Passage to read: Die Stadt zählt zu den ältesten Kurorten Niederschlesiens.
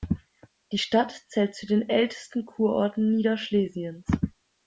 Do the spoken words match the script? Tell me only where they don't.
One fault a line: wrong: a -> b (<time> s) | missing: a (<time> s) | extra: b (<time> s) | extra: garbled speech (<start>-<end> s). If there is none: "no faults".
no faults